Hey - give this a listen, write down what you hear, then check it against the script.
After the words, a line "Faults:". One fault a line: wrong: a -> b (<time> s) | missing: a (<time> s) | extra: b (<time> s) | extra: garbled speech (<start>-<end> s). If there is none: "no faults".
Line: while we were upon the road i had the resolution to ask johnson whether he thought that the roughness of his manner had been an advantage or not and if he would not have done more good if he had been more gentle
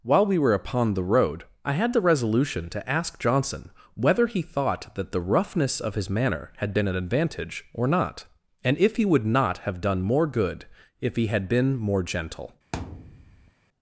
while we were upon the road i had the resolution to ask johnson whether he thought that the roughness of his manner had been an advantage or not and if he would not have done more good if he had been more gentle
Faults:
no faults